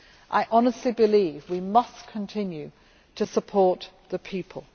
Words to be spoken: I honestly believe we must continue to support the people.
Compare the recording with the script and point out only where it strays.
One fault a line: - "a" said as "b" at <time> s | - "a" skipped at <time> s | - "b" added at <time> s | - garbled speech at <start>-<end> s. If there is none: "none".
none